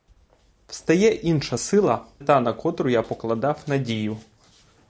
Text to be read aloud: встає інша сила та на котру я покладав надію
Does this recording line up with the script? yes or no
yes